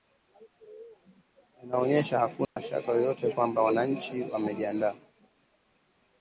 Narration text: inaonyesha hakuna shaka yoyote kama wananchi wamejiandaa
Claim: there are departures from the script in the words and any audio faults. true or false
true